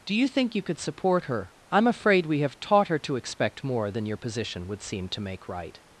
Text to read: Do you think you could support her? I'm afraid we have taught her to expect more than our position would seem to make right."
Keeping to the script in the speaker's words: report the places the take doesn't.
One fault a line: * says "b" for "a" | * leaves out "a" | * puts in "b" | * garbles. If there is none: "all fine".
* says "your" for "our"